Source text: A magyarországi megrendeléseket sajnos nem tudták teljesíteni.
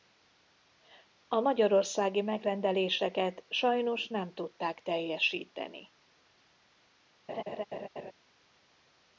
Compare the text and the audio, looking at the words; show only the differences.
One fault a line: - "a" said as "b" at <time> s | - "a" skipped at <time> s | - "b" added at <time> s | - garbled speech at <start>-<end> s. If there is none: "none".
none